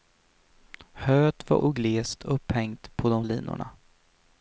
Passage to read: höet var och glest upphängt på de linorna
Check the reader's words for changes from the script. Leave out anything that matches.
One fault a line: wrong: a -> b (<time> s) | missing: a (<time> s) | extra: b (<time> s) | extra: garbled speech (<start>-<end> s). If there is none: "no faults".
no faults